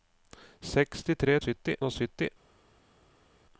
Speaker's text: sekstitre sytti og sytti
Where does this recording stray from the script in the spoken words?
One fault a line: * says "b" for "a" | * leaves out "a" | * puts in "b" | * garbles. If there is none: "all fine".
all fine